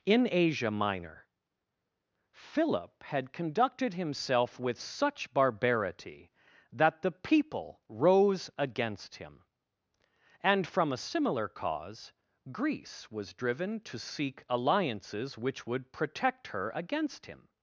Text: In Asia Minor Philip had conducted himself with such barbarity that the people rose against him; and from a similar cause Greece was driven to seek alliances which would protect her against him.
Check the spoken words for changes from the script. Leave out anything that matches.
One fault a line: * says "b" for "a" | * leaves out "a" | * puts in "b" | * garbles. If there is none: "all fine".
all fine